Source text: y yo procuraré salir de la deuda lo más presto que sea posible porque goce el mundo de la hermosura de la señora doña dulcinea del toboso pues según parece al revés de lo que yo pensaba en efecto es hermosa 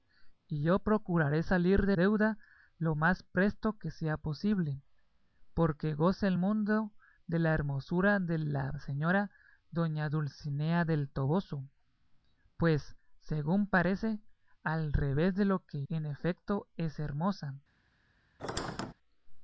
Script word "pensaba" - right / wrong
wrong